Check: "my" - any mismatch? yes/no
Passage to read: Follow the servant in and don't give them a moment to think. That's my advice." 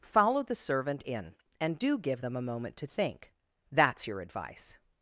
yes